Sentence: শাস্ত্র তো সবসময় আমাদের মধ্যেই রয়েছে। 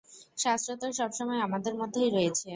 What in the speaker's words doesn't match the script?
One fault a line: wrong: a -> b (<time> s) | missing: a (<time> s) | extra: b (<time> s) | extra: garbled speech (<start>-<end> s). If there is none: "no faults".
no faults